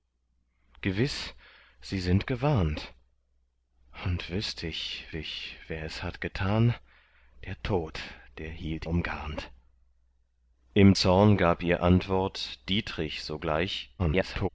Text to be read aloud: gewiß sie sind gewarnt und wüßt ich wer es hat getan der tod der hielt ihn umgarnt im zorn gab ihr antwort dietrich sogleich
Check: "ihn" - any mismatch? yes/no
yes